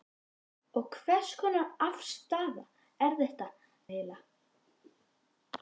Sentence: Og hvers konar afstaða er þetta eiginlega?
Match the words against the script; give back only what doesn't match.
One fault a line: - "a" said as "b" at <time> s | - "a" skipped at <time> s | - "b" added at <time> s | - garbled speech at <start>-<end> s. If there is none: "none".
none